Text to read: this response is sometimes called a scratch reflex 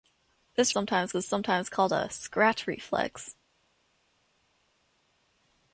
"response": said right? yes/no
no